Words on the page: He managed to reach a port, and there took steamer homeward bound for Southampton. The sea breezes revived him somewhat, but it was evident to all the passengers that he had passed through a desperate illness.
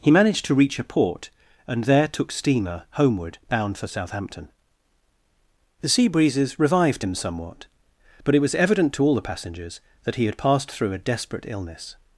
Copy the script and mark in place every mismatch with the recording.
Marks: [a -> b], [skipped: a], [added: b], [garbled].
He managed to reach a port, and there took steamer homeward bound for Southampton. The sea breezes revived him somewhat, but it was evident to all the passengers that he had passed through a desperate illness.